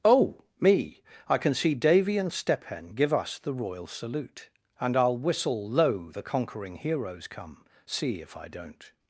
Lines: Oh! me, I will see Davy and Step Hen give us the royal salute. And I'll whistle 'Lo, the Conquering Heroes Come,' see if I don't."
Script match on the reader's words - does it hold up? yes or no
no